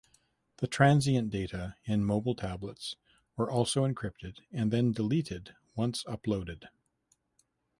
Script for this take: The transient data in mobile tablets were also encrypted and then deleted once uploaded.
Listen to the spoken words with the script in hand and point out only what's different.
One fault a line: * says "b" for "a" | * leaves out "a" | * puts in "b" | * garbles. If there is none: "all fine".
all fine